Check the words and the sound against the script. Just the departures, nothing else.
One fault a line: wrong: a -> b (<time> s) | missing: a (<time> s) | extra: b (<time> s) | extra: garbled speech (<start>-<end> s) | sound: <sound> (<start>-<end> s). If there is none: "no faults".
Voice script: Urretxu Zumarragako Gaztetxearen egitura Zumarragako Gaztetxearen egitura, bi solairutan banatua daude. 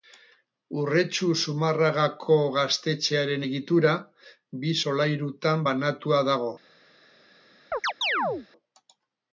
missing: Zumarragako Gaztetxearen egitura (3.9 s)
wrong: daude -> dago (6.3 s)
sound: chirp (7.7-8.5 s)